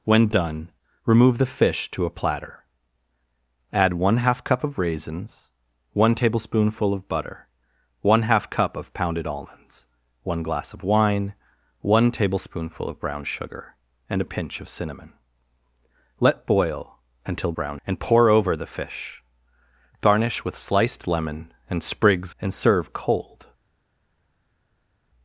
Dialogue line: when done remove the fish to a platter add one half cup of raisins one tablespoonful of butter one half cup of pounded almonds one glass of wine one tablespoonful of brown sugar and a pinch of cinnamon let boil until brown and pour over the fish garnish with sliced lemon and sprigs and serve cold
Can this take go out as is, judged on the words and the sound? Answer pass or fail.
pass